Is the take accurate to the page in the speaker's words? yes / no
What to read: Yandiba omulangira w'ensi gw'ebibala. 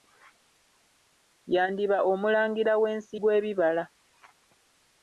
yes